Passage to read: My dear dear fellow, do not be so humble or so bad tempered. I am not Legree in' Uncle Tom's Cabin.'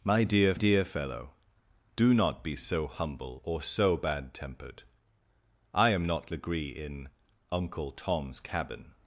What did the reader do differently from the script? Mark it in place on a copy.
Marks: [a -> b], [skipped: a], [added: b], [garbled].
My dear dear fellow, do not be so humble or so bad tempered. I am not Legree in' Uncle Tom's Cabin.'